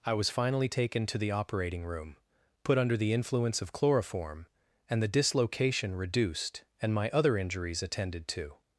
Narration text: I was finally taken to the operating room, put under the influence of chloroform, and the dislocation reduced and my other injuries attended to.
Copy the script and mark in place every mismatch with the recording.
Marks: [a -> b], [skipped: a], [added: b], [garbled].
I was finally taken to the operating room, put under the influence of chloroform, and the dislocation reduced and my other injuries attended to.